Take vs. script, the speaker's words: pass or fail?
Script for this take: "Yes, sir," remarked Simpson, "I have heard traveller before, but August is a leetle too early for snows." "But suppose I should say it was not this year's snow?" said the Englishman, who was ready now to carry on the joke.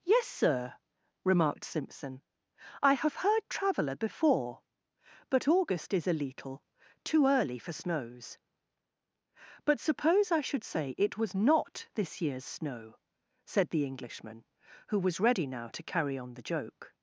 pass